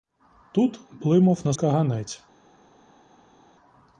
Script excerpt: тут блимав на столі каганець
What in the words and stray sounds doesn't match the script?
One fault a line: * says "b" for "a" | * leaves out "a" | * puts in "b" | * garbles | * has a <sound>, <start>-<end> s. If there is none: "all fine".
* leaves out "столі"